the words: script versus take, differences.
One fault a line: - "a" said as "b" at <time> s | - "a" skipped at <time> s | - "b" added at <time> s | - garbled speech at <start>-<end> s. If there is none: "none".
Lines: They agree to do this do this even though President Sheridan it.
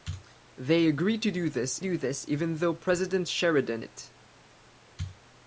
none